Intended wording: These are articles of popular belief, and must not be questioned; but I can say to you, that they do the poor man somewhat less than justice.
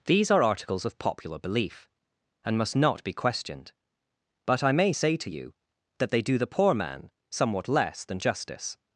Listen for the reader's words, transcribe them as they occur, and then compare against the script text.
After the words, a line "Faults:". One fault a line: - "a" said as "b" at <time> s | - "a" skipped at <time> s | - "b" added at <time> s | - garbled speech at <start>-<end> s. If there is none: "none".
These are articles of popular belief, and must not be questioned; but I may say to you, that they do the poor man somewhat less than justice.
Faults:
- "can" said as "may" at 4.7 s